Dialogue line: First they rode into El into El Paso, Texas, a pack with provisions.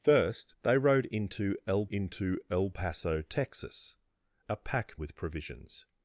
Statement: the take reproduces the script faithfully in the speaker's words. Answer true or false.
true